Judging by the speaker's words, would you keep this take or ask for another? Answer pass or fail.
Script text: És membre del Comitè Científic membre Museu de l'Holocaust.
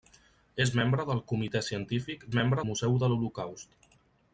pass